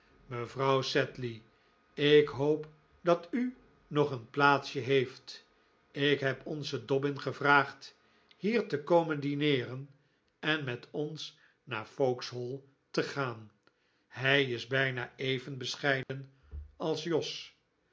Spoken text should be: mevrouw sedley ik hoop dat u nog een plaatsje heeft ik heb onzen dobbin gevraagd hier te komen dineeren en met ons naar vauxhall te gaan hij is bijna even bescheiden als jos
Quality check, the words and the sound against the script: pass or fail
fail